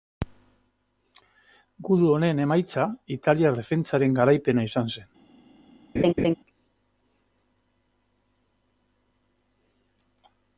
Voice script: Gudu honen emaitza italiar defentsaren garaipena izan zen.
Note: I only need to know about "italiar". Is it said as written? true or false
true